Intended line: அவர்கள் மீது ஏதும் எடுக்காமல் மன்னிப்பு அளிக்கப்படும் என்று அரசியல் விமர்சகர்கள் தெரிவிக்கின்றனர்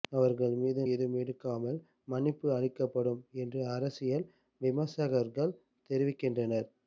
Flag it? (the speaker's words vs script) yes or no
no